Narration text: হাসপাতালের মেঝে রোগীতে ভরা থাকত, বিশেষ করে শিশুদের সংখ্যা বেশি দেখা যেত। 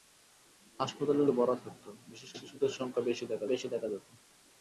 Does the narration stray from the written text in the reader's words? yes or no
yes